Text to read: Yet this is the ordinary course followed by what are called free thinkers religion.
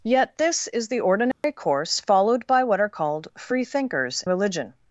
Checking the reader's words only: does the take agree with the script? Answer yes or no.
yes